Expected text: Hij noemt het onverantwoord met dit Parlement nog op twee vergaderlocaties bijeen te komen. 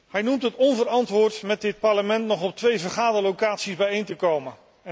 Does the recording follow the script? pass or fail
pass